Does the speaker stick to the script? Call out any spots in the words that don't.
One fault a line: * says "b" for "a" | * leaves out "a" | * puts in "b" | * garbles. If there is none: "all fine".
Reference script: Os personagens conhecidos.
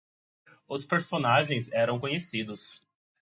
* puts in "eram"